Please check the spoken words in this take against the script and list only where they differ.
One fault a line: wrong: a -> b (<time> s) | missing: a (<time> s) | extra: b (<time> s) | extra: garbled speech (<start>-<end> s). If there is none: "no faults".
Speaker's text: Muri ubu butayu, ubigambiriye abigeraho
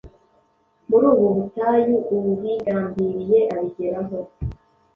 no faults